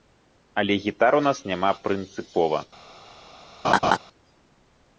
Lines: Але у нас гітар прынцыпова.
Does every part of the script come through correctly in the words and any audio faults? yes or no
no